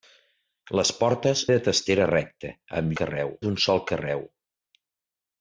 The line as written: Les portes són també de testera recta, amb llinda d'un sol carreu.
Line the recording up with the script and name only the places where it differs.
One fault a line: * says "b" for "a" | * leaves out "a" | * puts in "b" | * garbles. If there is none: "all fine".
* leaves out "són també"
* says "carreu" for "llinda"